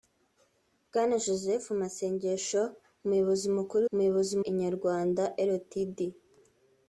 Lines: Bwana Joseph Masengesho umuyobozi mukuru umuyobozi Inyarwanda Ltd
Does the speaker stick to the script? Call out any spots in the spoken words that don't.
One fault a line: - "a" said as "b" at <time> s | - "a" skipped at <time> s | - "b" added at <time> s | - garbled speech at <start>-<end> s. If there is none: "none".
none